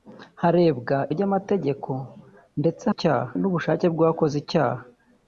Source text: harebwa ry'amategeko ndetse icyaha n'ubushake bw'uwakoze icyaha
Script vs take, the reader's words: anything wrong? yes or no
no